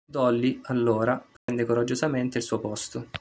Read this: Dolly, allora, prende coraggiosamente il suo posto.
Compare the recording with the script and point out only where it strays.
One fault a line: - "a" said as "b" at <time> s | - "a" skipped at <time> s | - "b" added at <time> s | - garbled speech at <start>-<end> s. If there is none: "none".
none